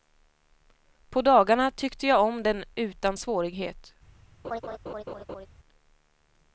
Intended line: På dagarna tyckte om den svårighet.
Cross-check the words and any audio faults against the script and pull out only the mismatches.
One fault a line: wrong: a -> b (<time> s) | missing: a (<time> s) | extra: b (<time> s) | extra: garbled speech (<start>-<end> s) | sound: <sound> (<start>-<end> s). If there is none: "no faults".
extra: jag (2.1 s)
extra: utan (2.8 s)
sound: laugh (4.4-5.5 s)